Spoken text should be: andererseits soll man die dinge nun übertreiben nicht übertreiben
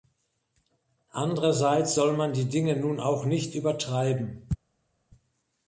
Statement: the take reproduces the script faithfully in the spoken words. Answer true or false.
false